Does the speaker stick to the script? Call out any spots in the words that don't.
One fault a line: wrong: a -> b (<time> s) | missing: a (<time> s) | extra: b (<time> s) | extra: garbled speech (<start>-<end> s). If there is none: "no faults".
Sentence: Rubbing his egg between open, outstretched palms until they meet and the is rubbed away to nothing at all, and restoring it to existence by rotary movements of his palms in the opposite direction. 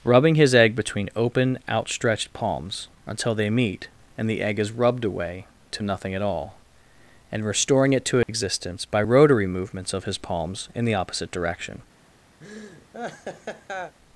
extra: egg (4.4 s)